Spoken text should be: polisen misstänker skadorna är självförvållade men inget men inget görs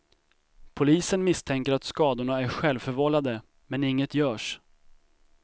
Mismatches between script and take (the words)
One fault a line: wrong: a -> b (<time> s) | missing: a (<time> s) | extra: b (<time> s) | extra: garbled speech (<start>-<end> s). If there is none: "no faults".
extra: att (1.7 s)
missing: men inget (4.2 s)